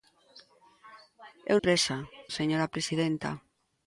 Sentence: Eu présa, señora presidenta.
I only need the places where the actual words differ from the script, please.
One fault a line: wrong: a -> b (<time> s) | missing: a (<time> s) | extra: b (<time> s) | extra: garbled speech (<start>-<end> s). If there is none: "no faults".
no faults